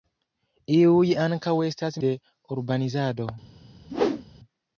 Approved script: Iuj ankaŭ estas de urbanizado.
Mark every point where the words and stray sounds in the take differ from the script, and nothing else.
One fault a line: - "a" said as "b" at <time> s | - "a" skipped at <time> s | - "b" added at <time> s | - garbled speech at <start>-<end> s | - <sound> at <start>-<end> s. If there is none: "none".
- whoosh at 3.9-4.2 s